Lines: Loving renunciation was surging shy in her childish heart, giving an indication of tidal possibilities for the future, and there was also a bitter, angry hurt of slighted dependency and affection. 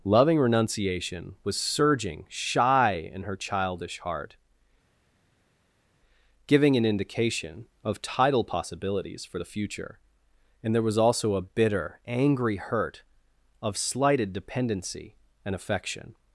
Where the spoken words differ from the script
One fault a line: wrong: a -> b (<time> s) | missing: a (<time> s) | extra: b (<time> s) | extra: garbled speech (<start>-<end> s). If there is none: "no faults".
no faults